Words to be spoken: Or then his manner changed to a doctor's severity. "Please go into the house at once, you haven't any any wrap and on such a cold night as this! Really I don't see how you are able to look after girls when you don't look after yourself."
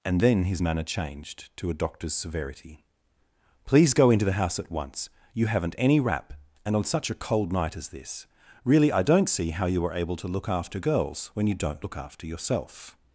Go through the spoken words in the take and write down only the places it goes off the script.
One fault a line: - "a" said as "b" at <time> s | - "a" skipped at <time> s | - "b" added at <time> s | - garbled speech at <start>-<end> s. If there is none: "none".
- "Or" said as "And" at 0.0 s
- "any" skipped at 6.0 s